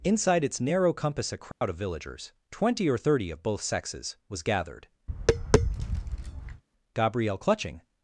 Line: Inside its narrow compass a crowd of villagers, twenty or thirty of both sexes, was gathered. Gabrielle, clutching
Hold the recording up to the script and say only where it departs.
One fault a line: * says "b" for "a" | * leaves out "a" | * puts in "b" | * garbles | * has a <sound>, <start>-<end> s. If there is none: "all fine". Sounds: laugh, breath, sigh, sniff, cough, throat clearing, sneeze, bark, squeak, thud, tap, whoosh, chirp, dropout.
* has a dropout, 1.5-1.6 s
* has a tap, 5.1-6.6 s